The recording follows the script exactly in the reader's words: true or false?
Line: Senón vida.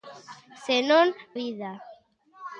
true